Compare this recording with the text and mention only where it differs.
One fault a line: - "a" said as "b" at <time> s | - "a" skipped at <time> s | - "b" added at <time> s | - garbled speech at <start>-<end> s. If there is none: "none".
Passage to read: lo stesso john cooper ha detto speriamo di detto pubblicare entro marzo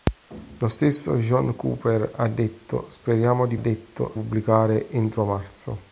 none